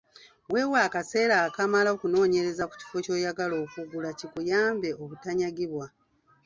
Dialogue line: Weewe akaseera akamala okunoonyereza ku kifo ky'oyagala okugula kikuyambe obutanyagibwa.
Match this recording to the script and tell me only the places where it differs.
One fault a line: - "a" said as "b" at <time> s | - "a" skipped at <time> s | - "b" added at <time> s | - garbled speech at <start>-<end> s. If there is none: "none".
none